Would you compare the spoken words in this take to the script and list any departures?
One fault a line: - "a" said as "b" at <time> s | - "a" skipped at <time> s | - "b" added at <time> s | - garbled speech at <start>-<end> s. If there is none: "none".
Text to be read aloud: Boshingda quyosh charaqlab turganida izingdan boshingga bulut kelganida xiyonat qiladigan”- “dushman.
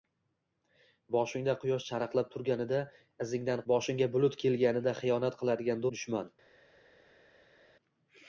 none